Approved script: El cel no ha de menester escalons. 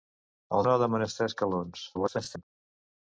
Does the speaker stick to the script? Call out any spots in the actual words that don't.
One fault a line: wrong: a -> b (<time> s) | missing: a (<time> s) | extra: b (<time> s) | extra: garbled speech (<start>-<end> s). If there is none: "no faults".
missing: cel (0.6 s)
extra: garbled speech (1.9-2.4 s)